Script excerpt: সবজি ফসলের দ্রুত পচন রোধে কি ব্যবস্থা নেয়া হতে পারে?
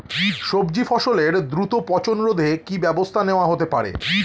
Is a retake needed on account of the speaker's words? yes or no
no